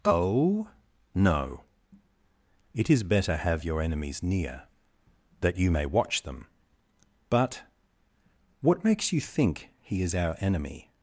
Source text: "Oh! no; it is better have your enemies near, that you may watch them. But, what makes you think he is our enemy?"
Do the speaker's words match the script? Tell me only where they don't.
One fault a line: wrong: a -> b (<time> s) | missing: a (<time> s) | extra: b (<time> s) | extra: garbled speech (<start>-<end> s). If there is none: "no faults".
no faults